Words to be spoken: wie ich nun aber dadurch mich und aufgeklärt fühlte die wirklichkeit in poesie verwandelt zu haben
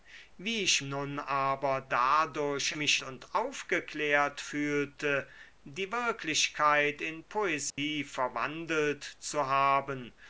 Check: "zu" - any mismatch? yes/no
no